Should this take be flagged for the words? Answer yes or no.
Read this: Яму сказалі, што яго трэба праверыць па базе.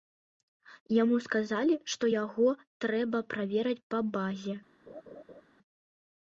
no